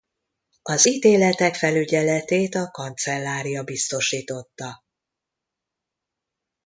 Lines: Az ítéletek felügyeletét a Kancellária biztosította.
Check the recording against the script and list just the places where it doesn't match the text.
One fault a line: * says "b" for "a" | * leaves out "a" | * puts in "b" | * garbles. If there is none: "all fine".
all fine